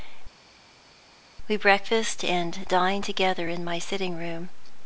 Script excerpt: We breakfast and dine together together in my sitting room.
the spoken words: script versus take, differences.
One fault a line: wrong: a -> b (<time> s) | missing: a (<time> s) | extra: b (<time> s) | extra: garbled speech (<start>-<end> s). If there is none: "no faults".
missing: together (3.5 s)